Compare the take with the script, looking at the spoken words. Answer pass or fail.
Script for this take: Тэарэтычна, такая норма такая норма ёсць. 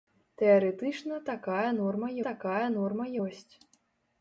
pass